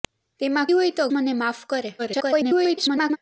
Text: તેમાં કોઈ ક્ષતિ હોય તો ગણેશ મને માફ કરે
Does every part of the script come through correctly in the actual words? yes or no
no